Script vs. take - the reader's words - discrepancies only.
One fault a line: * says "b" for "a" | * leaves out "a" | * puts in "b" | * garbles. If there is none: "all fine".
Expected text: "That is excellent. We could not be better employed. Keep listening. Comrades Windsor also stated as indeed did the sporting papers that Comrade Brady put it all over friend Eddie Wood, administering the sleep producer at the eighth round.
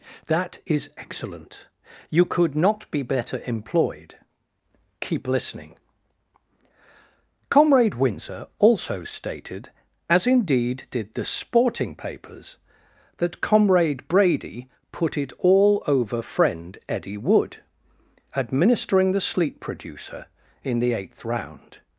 * says "You" for "We"
* says "Comrade" for "Comrades"
* says "in" for "at"